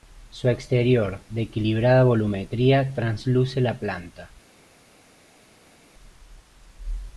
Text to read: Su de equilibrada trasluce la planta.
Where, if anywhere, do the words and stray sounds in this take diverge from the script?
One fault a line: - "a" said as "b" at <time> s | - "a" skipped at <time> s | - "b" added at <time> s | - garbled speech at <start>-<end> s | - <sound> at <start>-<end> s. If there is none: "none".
- "exterior" added at 0.5 s
- "volumetría" added at 2.0 s